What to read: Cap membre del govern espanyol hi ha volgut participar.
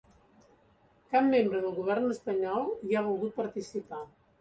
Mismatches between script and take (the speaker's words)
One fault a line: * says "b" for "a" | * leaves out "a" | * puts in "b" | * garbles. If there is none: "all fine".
all fine